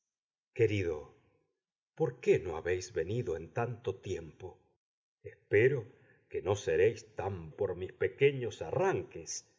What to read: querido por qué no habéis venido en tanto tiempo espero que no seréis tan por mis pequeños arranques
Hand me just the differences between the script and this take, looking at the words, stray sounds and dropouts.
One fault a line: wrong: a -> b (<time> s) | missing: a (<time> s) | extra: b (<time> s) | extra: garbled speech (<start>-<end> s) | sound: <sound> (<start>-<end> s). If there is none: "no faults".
no faults